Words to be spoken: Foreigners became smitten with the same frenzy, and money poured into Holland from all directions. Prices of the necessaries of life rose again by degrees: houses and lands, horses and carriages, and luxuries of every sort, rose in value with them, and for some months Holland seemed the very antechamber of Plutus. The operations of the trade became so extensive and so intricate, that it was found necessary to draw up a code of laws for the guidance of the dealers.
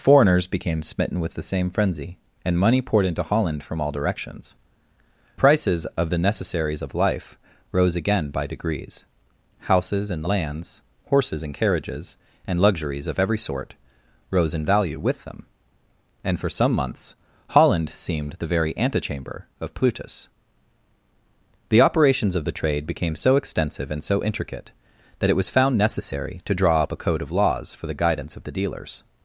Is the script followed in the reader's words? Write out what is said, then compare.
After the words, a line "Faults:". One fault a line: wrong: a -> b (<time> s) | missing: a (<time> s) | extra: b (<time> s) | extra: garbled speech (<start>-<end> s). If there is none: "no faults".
Foreigners became smitten with the same frenzy, and money poured into Holland from all directions. Prices of the necessaries of life rose again by degrees: houses and lands, horses and carriages, and luxuries of every sort, rose in value with them, and for some months Holland seemed the very antechamber of Plutus. The operations of the trade became so extensive and so intricate, that it was found necessary to draw up a code of laws for the guidance of the dealers.
Faults:
no faults